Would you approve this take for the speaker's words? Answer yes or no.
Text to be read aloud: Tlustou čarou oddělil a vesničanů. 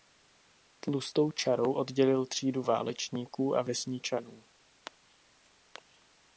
no